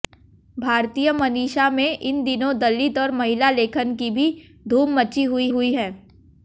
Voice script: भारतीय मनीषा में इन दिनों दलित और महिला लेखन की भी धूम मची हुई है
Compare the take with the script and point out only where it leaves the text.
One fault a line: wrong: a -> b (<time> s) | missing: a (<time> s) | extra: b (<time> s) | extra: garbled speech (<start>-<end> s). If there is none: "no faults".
extra: हुई (5.5 s)